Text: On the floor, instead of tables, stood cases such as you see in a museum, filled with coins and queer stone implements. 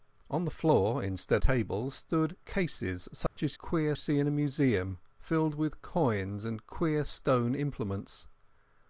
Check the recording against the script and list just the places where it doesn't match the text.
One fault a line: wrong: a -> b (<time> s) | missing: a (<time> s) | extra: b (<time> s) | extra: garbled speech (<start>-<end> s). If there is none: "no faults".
missing: of (1.4 s)
wrong: you -> queer (3.6 s)